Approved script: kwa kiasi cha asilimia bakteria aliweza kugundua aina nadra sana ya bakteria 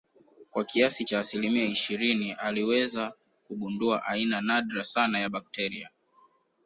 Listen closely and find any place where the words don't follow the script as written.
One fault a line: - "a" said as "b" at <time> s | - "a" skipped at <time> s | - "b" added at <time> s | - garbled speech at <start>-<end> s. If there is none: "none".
- "bakteria" said as "ishirini" at 1.6 s